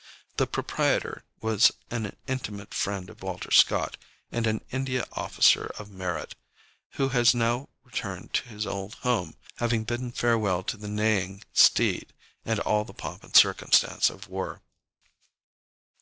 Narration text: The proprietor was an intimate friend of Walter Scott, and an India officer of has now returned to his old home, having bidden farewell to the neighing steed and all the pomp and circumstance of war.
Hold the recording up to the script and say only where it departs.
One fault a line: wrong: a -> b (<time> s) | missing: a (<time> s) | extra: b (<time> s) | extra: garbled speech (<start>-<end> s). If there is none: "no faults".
extra: merit who (5.9 s)